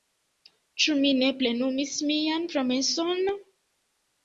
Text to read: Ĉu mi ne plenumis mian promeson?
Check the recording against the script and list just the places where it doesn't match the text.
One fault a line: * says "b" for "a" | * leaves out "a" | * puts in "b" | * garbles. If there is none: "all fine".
all fine